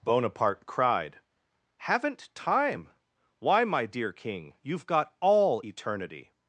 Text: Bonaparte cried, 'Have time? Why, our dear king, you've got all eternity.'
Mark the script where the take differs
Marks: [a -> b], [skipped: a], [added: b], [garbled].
Bonaparte cried, ['Have -> Haven't] time? Why, [our -> my] dear king, you've got all eternity.'